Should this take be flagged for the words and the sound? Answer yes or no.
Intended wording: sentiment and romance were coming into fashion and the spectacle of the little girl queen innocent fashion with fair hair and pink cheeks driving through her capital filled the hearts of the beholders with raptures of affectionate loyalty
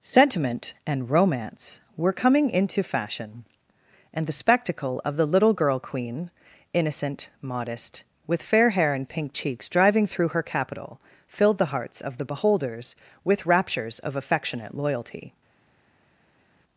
yes